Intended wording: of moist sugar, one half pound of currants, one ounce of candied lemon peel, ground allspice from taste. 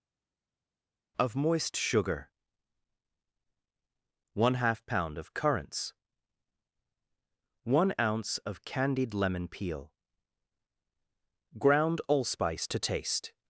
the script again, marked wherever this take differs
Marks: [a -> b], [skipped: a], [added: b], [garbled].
of moist sugar, one half pound of currants, one ounce of candied lemon peel, ground allspice [from -> to] taste.